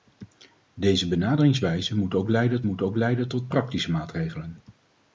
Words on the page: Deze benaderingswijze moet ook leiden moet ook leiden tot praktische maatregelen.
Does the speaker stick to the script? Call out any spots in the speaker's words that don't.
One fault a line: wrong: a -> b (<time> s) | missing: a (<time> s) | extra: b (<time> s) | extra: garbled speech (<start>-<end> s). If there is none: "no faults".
no faults